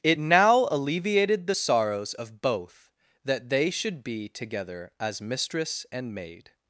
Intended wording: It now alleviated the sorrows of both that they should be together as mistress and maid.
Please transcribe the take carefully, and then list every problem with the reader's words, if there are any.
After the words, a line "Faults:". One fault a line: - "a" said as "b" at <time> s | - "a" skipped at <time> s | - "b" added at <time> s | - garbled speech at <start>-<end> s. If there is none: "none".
It now alleviated the sorrows of both that they should be together as mistress and maid.
Faults:
none